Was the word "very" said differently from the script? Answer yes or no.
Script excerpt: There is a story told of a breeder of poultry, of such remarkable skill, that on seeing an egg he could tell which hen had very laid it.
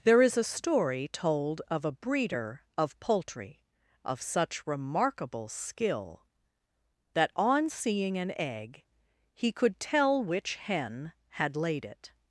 yes